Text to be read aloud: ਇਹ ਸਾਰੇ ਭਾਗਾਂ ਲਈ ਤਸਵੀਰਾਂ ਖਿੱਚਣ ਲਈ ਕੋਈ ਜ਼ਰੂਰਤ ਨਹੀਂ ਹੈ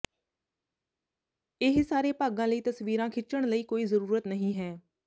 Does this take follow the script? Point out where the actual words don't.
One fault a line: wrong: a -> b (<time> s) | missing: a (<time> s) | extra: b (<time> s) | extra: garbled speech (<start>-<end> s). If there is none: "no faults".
no faults